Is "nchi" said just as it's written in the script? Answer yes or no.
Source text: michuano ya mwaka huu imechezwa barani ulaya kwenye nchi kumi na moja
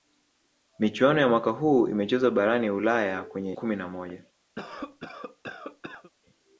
no